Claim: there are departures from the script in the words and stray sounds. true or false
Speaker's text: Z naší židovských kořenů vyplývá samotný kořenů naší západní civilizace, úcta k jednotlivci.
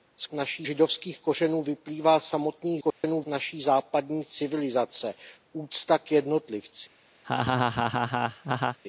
true